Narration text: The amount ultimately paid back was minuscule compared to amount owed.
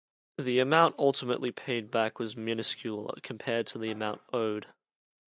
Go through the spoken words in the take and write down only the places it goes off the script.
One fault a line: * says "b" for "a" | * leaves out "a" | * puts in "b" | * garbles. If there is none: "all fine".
* puts in "the"